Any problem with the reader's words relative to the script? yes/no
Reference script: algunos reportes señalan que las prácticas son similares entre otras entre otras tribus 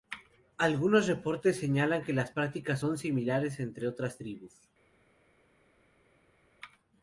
yes